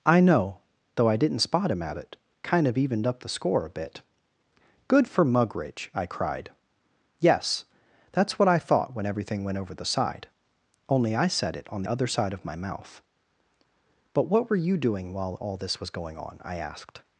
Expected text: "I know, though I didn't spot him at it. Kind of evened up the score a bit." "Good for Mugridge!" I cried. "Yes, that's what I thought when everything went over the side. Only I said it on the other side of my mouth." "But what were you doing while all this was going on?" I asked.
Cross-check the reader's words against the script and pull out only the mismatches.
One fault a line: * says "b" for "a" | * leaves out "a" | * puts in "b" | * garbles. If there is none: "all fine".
* leaves out "the"